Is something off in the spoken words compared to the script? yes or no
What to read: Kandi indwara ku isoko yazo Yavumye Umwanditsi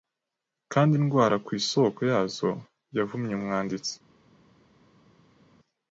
no